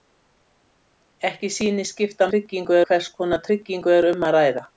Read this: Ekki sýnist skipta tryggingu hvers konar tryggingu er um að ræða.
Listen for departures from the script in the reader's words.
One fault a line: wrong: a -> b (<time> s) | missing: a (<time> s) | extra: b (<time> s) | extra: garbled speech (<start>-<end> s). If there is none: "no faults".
no faults